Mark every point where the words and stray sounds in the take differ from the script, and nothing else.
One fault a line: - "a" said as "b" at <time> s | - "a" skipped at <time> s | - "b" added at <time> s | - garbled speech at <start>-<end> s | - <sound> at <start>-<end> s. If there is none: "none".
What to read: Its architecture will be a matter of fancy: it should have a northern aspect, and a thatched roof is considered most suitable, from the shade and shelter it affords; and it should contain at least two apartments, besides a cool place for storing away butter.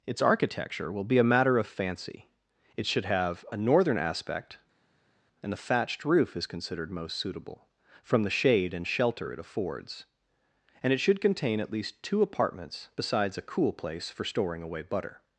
- "a" said as "the" at 5.5 s